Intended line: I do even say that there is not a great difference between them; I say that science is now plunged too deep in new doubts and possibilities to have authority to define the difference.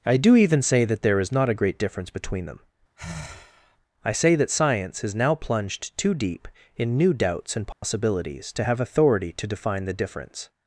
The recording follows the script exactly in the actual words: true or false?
true